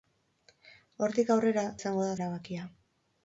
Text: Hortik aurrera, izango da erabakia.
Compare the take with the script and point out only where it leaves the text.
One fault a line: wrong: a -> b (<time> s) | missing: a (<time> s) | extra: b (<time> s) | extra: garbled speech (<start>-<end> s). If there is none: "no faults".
no faults